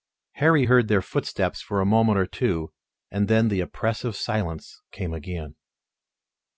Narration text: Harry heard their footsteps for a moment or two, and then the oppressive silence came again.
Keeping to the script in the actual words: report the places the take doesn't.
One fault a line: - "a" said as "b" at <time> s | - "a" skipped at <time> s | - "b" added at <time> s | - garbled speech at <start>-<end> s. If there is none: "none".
none